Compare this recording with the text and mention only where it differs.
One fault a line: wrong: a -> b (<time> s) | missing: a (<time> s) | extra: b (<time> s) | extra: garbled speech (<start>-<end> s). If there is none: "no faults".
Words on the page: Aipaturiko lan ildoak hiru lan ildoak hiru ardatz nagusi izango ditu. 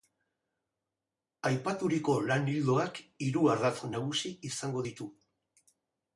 missing: lan ildoak hiru (3.4 s)